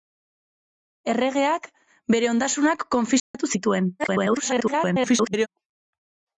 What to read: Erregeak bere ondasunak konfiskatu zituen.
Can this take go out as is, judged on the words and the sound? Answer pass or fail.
fail